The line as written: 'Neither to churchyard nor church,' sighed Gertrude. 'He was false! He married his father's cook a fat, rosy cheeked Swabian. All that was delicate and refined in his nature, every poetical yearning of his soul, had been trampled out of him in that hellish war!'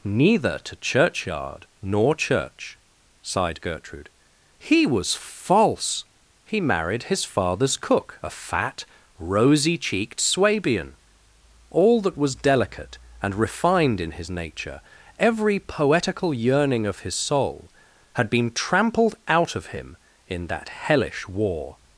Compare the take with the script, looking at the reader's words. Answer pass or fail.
pass